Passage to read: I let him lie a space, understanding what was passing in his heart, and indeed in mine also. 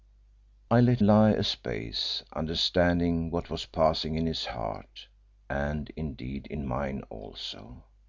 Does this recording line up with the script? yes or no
no